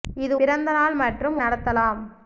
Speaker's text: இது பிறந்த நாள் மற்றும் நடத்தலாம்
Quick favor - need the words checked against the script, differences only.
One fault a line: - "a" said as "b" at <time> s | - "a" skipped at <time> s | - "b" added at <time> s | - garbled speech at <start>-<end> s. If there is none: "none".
none